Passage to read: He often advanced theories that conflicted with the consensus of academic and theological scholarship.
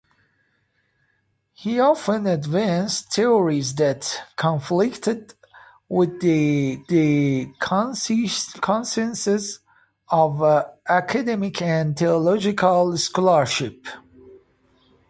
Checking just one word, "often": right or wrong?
right